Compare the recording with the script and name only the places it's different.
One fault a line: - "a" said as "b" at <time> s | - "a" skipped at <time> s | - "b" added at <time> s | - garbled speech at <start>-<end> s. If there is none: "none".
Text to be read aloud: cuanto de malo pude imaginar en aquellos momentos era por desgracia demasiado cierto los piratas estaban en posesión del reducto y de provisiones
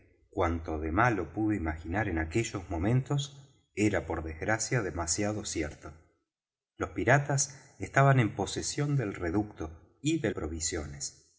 none